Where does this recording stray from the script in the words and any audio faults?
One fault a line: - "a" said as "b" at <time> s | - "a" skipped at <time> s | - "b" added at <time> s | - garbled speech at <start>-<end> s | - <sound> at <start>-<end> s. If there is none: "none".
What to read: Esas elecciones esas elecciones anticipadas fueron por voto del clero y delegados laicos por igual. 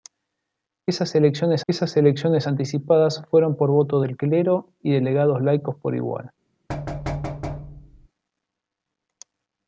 - thud at 6.7-8.1 s